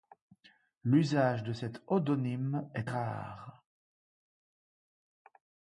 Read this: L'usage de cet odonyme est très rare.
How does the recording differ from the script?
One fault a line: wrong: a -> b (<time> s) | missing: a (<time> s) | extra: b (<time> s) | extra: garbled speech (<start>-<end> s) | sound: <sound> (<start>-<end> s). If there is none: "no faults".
missing: très (2.9 s)